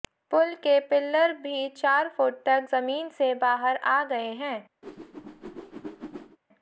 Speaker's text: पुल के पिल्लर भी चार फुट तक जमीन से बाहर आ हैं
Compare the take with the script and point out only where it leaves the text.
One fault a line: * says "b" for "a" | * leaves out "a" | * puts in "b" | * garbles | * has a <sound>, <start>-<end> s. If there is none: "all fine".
* puts in "गए"
* has a whoosh, 4.8-6.4 s